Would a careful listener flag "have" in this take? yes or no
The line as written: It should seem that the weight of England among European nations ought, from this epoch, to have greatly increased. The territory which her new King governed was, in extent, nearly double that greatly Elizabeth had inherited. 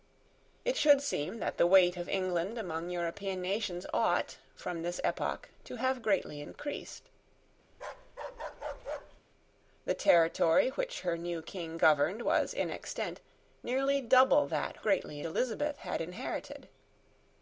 no